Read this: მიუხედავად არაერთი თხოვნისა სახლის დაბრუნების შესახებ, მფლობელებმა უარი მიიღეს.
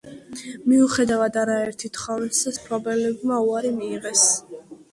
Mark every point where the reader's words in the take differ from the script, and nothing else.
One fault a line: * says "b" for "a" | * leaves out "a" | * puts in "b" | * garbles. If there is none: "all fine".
* leaves out "სახლის დაბრუნების შესახებ"